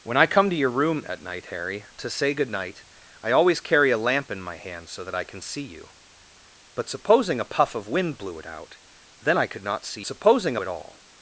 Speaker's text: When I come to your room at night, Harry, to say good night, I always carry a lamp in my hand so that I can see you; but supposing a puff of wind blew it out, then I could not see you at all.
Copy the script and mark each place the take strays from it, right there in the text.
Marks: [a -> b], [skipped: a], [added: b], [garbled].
When I come to your room at night, Harry, to say good night, I always carry a lamp in my hand so that I can see you; but supposing a puff of wind blew it out, then I could not see [you -> supposing] at all.